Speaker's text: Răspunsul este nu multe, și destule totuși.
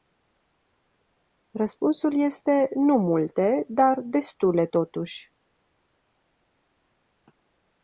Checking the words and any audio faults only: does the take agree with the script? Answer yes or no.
no